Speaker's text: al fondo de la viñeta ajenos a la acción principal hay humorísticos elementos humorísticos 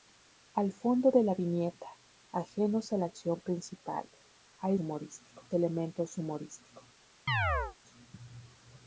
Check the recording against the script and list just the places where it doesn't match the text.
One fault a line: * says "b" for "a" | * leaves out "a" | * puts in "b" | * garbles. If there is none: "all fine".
all fine